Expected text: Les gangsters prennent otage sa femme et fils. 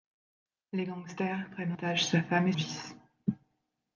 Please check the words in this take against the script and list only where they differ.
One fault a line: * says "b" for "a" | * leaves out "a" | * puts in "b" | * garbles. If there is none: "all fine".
all fine